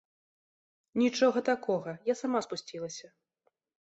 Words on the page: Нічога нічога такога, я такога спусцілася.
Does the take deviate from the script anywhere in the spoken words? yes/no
yes